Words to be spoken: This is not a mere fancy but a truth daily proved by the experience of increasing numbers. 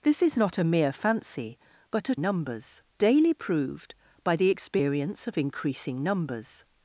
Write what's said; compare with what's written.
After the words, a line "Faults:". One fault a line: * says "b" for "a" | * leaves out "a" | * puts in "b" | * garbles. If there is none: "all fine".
This is not a mere fancy but a numbers daily proved by the experience of increasing numbers.
Faults:
* says "numbers" for "truth"